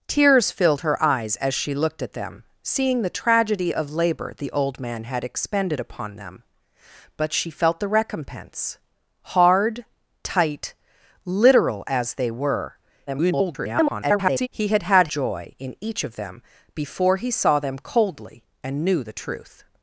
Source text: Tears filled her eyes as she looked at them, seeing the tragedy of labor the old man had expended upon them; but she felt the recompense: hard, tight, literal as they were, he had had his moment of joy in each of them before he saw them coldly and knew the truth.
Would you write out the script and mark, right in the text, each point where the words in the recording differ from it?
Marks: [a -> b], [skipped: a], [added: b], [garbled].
Tears filled her eyes as she looked at them, seeing the tragedy of labor the old man had expended upon them; but she felt the recompense: hard, tight, literal as they were, [garbled] he had had [skipped: his moment of] joy in each of them before he saw them coldly and knew the truth.